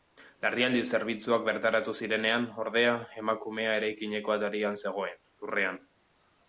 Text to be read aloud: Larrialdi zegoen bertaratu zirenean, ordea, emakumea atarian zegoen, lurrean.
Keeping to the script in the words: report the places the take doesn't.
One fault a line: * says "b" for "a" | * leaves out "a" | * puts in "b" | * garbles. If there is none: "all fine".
* says "zerbitzuak" for "zegoen"
* puts in "eraikineko"